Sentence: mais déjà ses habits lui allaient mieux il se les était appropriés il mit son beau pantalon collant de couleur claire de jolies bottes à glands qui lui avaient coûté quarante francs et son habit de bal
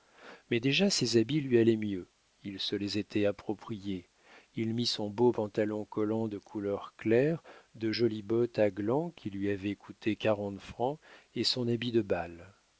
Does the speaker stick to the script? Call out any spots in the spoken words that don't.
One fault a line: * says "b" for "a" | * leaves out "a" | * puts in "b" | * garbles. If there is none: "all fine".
all fine